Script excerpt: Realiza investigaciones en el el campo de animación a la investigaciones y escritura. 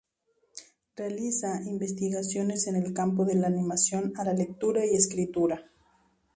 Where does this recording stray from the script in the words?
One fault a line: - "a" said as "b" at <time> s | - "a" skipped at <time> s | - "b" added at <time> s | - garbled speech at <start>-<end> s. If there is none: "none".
- "el" skipped at 2.9 s
- "la" added at 3.4 s
- "investigaciones" said as "lectura" at 4.3 s